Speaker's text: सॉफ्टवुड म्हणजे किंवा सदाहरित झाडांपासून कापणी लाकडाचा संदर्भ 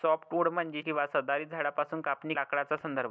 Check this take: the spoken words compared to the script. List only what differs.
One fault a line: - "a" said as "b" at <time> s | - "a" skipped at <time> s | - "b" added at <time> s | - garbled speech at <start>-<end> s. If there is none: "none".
none